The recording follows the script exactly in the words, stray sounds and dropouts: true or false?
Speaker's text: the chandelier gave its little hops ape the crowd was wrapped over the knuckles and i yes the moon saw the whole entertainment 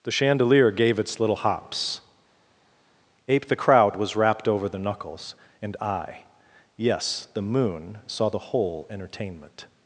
true